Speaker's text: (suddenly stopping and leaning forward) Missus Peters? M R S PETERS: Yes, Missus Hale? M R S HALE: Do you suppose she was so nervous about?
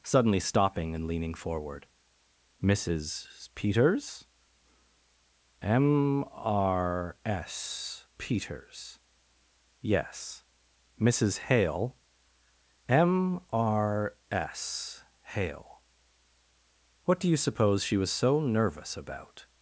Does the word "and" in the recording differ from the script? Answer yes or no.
no